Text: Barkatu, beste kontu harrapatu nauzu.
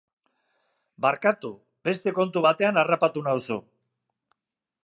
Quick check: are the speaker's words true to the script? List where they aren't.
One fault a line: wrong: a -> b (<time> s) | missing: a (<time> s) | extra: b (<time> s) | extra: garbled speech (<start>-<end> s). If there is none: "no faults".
extra: batean (2.5 s)